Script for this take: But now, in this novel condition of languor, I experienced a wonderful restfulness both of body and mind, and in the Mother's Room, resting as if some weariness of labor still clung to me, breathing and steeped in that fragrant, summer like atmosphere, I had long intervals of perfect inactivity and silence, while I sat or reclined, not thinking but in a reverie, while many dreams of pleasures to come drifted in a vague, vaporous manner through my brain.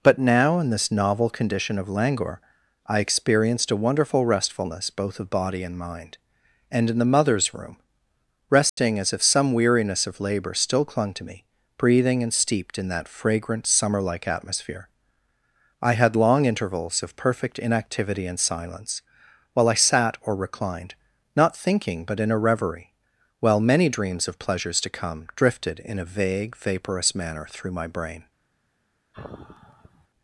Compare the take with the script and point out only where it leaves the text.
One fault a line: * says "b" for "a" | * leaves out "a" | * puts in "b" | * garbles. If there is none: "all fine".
all fine